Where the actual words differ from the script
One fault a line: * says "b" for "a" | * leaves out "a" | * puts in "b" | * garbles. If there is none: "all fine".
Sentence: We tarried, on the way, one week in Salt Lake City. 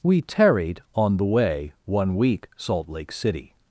* leaves out "in"